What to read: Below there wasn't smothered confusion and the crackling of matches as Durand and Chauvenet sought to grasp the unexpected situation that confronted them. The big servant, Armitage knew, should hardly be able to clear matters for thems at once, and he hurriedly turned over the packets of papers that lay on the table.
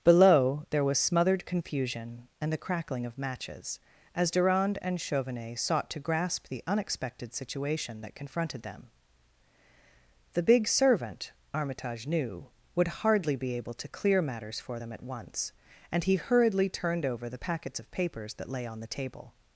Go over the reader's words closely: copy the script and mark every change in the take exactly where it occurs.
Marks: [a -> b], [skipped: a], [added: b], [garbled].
Below there [wasn't -> was] smothered confusion and the crackling of matches as Durand and Chauvenet sought to grasp the unexpected situation that confronted them. The big servant, Armitage knew, [should -> would] hardly be able to clear matters for [thems -> them] at once, and he hurriedly turned over the packets of papers that lay on the table.